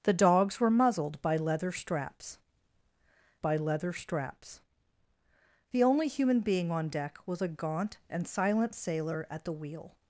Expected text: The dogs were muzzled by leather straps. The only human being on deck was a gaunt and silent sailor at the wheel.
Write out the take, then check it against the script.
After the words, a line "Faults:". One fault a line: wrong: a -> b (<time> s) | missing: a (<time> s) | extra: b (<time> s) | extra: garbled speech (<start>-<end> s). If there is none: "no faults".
The dogs were muzzled by leather straps by leather straps. The only human being on deck was a gaunt and silent sailor at the wheel.
Faults:
extra: by leather straps (3.4 s)